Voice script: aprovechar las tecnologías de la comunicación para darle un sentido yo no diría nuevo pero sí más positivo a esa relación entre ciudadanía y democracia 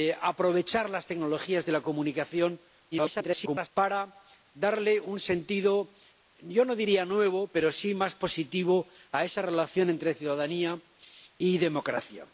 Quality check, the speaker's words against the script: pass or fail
fail